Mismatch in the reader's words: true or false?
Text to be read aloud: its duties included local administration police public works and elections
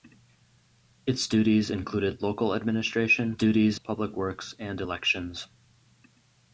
true